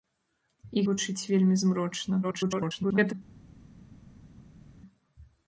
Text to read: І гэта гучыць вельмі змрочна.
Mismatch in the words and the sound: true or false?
true